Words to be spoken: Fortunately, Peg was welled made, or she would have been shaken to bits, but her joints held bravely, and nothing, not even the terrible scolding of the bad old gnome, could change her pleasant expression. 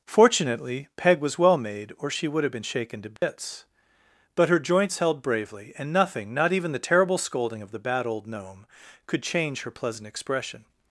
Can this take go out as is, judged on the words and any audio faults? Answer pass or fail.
fail